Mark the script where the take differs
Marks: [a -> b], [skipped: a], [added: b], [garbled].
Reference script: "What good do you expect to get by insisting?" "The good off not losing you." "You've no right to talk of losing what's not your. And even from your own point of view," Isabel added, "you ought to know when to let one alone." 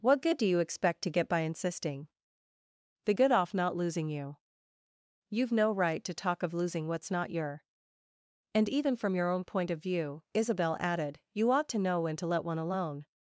"What good do you expect to get by insisting?" "The good off not losing you." "You've no right to talk of losing what's not your. And even from your own point of view," Isabel added, "you ought to know when to let one alone."